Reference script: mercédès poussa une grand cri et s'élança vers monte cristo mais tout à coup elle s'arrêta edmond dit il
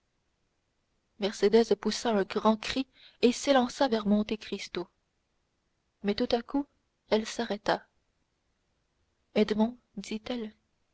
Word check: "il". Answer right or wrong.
wrong